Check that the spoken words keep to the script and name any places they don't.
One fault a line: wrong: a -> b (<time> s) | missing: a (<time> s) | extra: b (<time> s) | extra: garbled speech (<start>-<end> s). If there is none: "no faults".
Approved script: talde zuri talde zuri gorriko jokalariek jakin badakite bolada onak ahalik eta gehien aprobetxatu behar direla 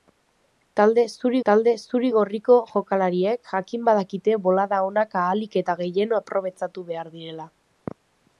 no faults